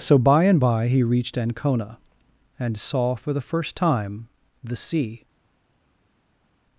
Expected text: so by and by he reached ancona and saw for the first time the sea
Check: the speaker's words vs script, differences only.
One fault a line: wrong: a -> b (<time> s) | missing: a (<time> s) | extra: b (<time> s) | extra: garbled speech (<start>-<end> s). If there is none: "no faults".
no faults